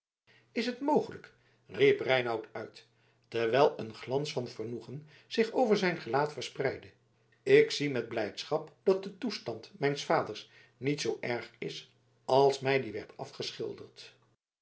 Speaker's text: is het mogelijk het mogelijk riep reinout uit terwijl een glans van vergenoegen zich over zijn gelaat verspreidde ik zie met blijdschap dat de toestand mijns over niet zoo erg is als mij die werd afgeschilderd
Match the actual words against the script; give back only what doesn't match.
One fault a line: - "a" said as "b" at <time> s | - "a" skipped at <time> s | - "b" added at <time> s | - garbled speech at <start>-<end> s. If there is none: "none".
- "het mogelijk" skipped at 1.3 s
- "over" said as "vaders" at 10.1 s